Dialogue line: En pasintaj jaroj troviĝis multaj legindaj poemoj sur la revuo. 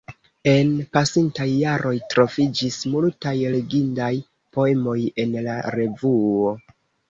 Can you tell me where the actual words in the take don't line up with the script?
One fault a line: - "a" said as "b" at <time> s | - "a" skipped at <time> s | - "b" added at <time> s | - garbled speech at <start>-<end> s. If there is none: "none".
- "sur" said as "en" at 5.3 s